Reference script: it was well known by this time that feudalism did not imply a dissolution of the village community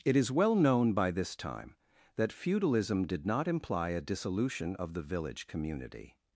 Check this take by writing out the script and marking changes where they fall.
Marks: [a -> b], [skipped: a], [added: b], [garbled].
it [was -> is] well known by this time that feudalism did not imply a dissolution of the village community